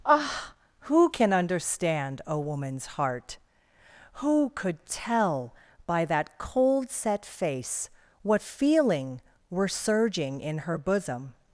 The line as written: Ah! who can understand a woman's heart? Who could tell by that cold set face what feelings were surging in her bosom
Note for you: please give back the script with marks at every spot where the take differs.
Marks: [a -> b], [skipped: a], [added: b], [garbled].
Ah! who can understand a woman's heart? Who could tell by that cold set face what [feelings -> feeling] were surging in her bosom